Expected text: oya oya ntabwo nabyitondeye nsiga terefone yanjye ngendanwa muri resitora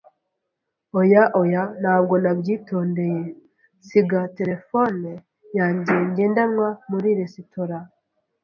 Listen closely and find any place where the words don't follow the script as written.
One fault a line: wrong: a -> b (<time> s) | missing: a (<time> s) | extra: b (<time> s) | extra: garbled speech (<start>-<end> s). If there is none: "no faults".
no faults